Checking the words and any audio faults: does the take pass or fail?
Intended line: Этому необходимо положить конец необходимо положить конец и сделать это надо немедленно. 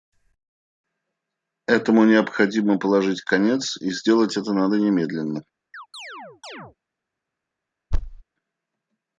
fail